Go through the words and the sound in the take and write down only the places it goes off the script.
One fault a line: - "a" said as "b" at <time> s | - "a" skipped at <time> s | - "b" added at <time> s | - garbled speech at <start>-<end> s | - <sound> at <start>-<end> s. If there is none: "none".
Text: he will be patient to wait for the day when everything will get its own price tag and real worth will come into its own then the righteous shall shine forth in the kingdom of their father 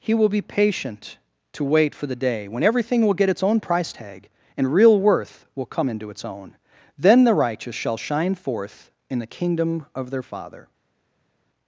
none